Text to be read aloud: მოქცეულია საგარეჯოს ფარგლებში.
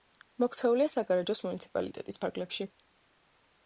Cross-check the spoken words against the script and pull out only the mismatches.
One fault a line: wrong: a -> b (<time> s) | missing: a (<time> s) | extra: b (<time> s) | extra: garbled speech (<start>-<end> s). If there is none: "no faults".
extra: მუნიციპალიტეტის (1.5 s)